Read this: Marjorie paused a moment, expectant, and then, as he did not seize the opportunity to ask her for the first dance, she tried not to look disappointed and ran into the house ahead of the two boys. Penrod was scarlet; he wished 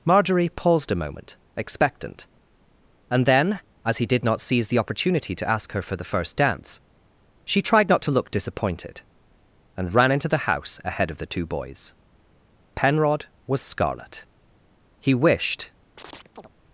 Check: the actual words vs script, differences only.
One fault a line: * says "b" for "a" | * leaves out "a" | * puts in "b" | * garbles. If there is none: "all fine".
all fine